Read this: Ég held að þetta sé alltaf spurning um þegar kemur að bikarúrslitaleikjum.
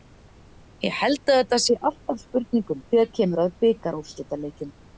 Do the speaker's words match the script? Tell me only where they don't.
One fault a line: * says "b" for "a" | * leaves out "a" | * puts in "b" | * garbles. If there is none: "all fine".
all fine